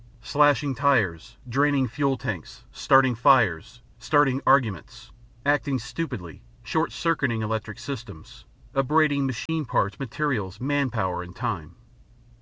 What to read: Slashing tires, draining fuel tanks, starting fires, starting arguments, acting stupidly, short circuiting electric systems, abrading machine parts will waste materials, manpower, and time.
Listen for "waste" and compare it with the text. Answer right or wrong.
wrong